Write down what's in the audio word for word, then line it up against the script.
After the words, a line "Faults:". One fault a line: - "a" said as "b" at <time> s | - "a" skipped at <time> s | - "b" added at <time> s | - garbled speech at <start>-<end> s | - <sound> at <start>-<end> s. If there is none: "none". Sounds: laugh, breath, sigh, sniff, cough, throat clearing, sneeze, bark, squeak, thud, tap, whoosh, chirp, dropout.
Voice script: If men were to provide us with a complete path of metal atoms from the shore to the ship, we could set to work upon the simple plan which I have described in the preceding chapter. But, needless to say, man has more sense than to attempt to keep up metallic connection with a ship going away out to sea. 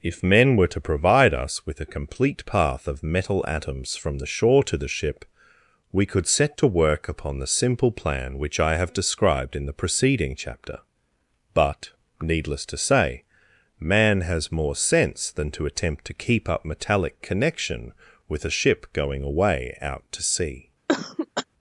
If men were to provide us with a complete path of metal atoms from the shore to the ship, we could set to work upon the simple plan which I have described in the preceding chapter. But, needless to say, man has more sense than to attempt to keep up metallic connection with a ship going away out to sea.
Faults:
- cough at 20.9-21.4 s